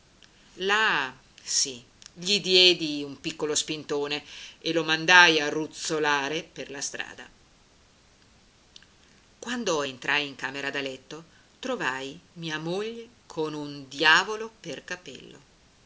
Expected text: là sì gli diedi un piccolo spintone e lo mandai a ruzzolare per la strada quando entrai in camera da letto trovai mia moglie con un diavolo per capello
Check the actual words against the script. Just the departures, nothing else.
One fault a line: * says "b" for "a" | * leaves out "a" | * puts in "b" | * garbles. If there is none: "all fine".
all fine